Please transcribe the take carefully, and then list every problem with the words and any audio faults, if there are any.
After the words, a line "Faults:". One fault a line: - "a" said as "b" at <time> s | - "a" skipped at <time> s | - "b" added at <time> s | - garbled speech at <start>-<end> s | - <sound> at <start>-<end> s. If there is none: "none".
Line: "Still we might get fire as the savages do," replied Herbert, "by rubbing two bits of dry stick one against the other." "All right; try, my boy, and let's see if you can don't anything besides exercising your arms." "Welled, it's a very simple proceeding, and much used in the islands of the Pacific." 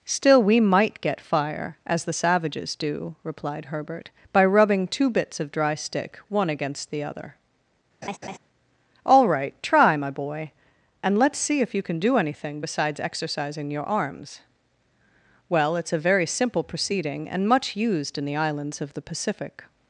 "Still we might get fire as the savages do," replied Herbert, "by rubbing two bits of dry stick one against the other." "All right; try, my boy, and let's see if you can do anything besides exercising your arms." "Well, it's a very simple proceeding, and much used in the islands of the Pacific."
Faults:
- laugh at 8.0-8.4 s
- "don't" said as "do" at 12.0 s
- "Welled" said as "Well" at 15.5 s